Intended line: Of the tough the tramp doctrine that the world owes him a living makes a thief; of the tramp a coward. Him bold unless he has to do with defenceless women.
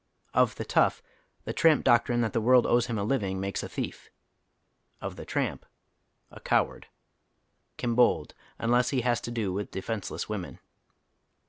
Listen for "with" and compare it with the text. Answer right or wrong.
right